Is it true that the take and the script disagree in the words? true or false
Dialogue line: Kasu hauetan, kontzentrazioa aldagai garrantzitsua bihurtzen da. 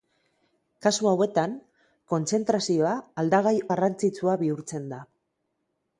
false